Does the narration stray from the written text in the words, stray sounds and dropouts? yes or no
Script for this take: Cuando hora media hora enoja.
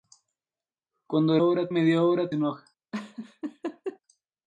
yes